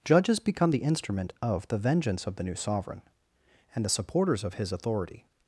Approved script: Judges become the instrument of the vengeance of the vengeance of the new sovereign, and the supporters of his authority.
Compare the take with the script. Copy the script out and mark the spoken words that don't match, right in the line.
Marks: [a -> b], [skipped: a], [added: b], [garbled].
Judges become the instrument of the vengeance of the [skipped: vengeance of the] new sovereign, and the supporters of his authority.